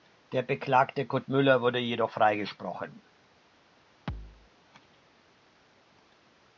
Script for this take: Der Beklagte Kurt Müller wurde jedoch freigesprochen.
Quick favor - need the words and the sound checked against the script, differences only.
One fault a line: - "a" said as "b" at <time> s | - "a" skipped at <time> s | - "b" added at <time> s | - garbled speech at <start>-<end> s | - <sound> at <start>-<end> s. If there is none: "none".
- thud at 4.1-4.5 s